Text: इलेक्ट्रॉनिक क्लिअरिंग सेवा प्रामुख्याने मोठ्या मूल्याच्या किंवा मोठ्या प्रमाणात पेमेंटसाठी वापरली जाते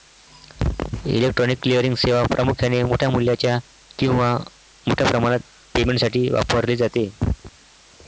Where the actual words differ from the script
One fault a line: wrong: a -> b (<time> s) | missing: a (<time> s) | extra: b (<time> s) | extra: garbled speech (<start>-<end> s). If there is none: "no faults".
no faults